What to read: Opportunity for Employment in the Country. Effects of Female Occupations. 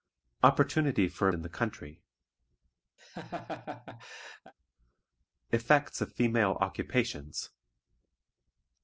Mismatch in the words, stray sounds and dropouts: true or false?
true